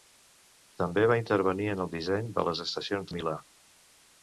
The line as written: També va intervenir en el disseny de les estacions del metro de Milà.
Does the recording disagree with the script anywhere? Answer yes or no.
yes